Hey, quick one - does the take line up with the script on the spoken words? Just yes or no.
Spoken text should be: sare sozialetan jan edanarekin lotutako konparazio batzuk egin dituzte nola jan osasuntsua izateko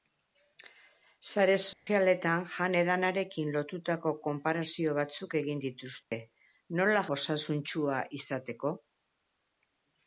no